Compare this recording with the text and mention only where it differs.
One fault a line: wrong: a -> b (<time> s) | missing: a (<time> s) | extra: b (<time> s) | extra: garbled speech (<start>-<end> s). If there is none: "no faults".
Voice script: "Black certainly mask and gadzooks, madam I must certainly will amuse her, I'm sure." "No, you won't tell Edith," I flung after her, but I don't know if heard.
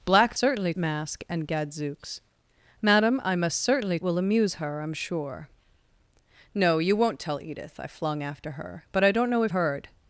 no faults